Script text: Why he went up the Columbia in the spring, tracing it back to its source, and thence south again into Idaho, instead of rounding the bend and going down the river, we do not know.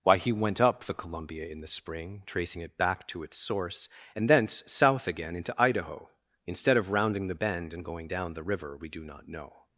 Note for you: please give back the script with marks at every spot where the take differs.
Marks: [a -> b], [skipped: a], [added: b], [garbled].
Why he went up the Columbia in the spring, tracing it back to its source, and thence south again into Idaho, instead of rounding the bend and going down the river, we do not know.